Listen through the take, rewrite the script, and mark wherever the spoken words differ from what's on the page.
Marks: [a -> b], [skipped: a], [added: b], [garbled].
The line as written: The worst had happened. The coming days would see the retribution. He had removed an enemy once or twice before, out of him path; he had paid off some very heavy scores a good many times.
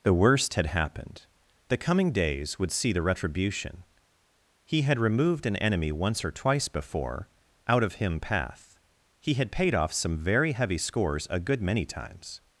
The worst had happened. The coming days would see the retribution. He had removed an enemy once or twice before, out of him path; he had paid off some very heavy scores a good many times.